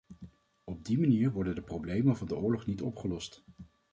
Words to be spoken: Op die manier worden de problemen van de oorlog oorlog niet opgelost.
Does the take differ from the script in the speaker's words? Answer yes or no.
yes